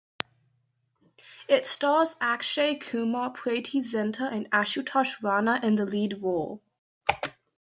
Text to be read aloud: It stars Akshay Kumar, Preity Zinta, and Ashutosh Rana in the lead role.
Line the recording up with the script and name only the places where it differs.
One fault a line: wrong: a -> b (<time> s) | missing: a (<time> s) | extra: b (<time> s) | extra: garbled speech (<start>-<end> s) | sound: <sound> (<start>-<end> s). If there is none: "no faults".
no faults